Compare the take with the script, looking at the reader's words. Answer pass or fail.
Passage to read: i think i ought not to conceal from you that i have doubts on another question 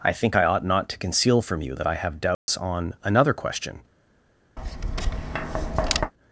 pass